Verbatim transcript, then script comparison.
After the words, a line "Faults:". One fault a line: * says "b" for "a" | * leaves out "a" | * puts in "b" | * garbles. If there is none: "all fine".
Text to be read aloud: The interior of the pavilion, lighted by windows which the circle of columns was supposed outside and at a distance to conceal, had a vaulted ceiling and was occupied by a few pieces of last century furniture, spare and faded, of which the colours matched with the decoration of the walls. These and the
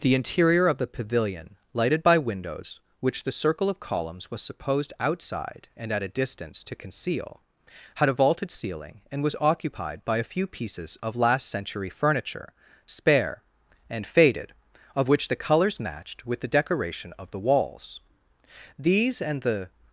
The interior of the pavilion, lighted by windows which the circle of columns was supposed outside and at a distance to conceal, had a vaulted ceiling and was occupied by a few pieces of last century furniture, spare and faded, of which the colours matched with the decoration of the walls. These and the
Faults:
all fine